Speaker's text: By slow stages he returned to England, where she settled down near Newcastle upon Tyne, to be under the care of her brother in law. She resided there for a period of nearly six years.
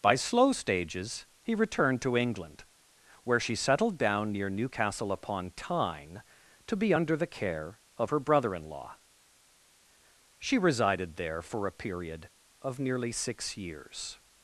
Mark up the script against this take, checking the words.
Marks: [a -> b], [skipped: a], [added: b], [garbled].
By slow stages he returned to England, where she settled down near Newcastle upon Tyne, to be under the care of her brother in law. She resided there for a period of nearly six years.